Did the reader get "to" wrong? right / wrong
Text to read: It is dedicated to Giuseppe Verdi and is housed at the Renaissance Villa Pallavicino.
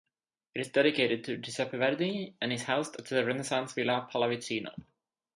right